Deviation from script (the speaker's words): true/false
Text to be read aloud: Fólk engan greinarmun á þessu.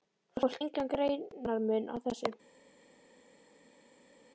false